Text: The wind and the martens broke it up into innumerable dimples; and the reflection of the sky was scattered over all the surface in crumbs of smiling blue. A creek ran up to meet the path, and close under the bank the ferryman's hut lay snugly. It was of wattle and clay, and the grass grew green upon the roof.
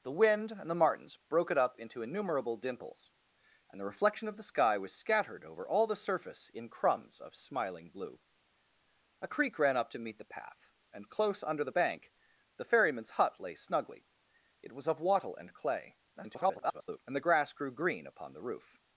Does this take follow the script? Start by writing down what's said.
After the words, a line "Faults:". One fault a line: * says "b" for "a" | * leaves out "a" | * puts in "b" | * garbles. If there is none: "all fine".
The wind and the martens broke it up into innumerable dimples; and the reflection of the sky was scattered over all the surface in crumbs of smiling blue. A creek ran up to meet the path, and close under the bank the ferryman's hut lay snugly. It was of wattle and clay, [garbled] and the grass grew green upon the roof.
Faults:
* garbles